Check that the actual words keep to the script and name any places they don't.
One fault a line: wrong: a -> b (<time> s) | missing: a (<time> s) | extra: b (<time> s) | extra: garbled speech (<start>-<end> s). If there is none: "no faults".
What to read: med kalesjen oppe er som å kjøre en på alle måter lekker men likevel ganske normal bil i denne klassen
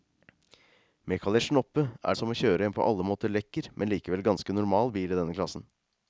no faults